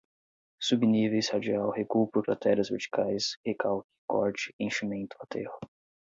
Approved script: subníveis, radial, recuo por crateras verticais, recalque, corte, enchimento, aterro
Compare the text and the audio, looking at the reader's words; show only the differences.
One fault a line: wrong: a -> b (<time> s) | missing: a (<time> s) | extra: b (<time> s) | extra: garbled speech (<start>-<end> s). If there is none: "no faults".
no faults